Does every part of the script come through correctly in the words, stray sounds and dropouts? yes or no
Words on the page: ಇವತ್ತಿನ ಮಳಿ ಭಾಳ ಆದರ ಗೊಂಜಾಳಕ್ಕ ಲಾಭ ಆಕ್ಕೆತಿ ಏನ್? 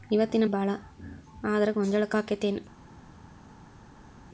no